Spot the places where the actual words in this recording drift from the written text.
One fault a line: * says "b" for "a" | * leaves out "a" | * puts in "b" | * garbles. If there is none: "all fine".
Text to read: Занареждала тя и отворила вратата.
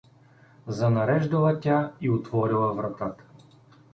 all fine